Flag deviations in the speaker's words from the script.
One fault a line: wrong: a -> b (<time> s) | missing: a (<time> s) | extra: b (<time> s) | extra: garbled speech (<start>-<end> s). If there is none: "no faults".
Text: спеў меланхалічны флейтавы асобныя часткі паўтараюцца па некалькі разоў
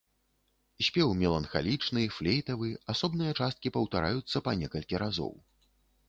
no faults